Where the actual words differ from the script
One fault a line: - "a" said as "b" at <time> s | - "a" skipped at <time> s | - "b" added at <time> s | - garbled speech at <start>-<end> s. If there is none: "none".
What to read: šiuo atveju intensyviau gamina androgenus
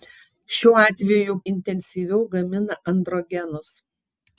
none